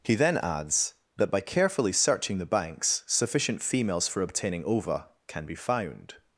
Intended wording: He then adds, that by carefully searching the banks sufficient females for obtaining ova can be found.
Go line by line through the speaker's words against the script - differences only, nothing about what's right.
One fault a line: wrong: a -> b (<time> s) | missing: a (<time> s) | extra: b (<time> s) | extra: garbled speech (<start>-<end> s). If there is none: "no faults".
no faults